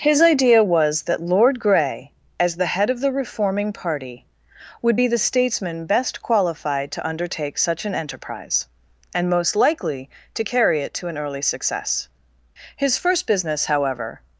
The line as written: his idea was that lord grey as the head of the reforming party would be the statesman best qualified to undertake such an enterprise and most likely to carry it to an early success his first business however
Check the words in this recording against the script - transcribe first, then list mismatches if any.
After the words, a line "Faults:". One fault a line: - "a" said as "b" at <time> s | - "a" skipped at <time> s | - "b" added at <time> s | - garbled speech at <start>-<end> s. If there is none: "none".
his idea was that lord grey as the head of the reforming party would be the statesman best qualified to undertake such an enterprise and most likely to carry it to an early success his first business however
Faults:
none